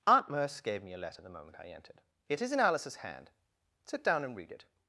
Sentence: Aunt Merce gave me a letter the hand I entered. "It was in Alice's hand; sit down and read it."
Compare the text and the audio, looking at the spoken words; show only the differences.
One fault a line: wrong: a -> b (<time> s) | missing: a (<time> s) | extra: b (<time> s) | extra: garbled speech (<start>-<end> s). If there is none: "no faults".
wrong: hand -> moment (1.4 s)
wrong: was -> is (2.4 s)